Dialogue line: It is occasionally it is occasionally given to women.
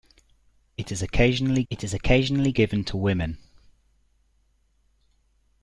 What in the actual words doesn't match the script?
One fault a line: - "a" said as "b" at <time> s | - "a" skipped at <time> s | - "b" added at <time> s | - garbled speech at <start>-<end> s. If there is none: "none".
none